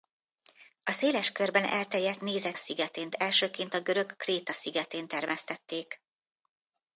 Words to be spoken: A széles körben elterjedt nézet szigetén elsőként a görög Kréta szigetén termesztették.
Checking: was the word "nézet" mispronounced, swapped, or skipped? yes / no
no